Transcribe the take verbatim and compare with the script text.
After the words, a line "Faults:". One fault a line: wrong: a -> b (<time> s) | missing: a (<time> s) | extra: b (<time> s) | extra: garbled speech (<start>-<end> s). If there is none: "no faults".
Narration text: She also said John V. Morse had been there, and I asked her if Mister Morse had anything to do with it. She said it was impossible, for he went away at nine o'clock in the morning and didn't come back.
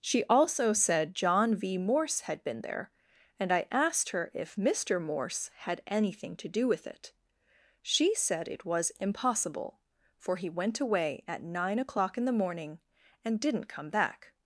She also said John V. Morse had been there, and I asked her if Mister Morse had anything to do with it. She said it was impossible, for he went away at nine o'clock in the morning and didn't come back.
Faults:
no faults